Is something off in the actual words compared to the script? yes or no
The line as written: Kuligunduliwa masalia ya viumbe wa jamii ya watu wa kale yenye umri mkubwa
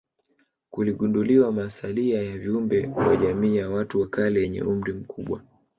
no